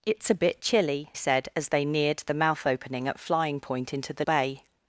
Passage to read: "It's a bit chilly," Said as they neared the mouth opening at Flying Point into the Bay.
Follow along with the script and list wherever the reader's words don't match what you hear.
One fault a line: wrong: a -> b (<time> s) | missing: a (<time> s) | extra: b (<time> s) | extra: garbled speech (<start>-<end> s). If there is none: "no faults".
no faults